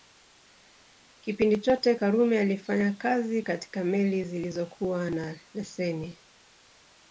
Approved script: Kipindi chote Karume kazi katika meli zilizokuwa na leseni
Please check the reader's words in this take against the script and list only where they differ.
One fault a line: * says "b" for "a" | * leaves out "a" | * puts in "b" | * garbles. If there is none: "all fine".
* puts in "alifanya"